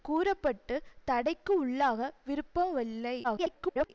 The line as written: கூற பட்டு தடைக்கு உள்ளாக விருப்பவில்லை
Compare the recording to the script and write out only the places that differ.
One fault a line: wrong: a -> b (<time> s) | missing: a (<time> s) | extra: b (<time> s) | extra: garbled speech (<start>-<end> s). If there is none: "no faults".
extra: garbled speech (3.2-3.9 s)